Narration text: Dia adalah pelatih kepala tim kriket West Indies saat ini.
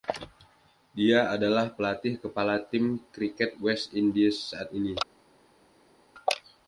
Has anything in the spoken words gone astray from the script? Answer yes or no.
no